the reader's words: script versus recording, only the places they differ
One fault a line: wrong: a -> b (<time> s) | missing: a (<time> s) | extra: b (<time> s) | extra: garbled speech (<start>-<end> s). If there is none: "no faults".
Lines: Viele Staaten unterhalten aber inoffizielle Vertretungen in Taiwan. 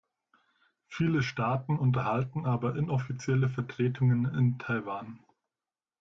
no faults